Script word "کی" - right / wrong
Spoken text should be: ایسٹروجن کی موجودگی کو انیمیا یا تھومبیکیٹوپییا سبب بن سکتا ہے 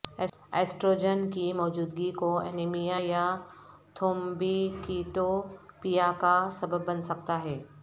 right